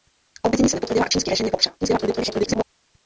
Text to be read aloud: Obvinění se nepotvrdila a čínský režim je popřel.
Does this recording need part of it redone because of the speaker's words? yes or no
yes